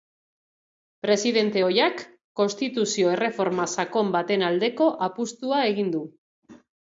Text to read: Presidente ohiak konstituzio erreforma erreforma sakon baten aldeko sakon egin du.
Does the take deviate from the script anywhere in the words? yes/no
yes